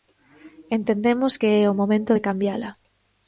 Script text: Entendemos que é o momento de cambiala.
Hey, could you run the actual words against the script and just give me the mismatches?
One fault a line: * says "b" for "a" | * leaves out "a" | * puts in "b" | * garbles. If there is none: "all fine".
all fine